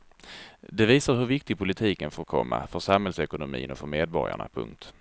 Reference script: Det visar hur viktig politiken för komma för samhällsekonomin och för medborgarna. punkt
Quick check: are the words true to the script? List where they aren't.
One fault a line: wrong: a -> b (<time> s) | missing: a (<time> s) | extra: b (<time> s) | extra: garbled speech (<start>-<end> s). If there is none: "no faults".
no faults